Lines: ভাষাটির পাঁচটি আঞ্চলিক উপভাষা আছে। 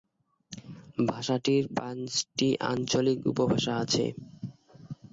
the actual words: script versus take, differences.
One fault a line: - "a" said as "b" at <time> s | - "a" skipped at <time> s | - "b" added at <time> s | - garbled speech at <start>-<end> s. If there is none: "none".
none